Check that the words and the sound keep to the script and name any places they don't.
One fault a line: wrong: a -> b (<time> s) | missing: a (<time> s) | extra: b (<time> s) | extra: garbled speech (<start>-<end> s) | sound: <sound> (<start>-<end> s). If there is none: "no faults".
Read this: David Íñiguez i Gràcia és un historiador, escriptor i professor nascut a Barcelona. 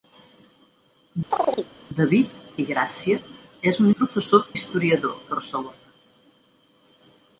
sound: chirp (1.3-1.7 s)
missing: Íñiguez (2.4 s)
missing: historiador escriptor (3.9 s)
wrong: nascut -> historiador (4.5 s)